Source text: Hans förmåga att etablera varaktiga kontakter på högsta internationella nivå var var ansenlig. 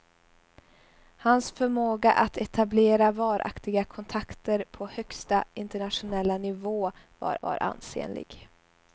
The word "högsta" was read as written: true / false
true